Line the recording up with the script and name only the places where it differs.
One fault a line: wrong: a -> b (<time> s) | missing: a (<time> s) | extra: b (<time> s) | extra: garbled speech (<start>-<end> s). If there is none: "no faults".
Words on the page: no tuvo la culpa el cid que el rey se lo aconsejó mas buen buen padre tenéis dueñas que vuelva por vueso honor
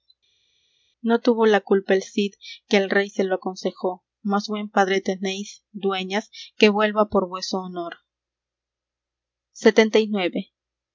missing: buen (4.7 s)